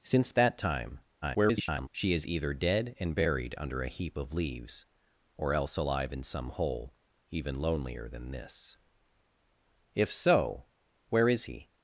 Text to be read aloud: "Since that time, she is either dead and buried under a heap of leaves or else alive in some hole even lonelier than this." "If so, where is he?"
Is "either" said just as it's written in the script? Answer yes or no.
yes